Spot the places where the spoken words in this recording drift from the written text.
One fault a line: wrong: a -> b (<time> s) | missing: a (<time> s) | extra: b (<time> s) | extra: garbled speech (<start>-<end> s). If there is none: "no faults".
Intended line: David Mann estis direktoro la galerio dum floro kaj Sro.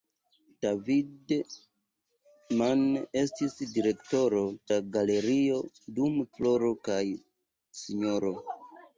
no faults